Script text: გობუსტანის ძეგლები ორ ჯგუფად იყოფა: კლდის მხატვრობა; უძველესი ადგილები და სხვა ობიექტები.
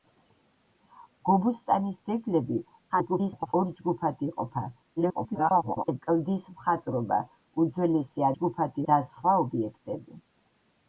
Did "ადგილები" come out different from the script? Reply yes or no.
yes